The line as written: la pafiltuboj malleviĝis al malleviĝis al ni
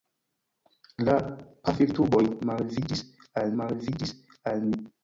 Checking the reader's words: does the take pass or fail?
pass